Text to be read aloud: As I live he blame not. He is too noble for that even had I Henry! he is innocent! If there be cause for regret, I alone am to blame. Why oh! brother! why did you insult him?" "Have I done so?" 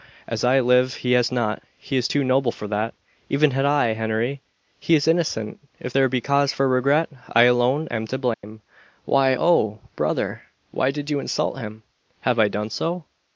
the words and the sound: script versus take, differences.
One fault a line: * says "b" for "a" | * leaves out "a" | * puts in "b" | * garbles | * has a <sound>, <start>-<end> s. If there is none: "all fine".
* says "has" for "blame"
* has a dropout, 8.3-8.4 s